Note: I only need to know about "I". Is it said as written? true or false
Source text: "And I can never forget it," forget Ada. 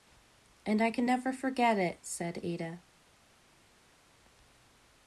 true